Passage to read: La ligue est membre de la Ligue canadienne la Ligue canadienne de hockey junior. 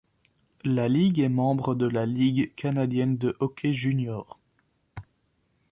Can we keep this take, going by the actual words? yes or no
no